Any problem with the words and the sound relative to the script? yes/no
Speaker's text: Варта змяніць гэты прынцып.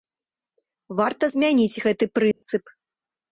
yes